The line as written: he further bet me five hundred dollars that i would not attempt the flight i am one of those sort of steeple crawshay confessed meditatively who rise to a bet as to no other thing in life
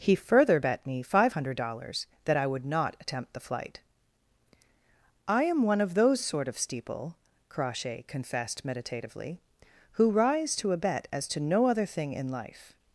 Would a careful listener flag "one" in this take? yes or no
no